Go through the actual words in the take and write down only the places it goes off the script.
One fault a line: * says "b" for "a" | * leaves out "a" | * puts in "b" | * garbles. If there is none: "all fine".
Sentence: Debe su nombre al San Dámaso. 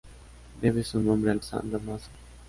all fine